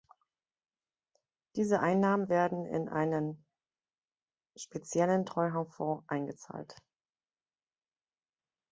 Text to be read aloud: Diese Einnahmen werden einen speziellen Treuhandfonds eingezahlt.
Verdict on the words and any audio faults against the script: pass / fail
fail